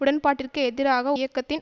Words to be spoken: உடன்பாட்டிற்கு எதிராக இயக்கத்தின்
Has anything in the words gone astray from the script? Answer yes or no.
no